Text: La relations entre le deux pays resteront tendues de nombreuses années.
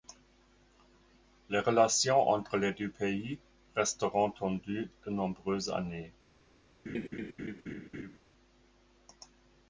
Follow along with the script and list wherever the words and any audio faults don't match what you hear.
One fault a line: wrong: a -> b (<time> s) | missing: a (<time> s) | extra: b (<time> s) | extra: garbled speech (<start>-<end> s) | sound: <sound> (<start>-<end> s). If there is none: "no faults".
wrong: La -> Les (1.5 s)
wrong: le -> les (2.6 s)
sound: laugh (6.9-8.2 s)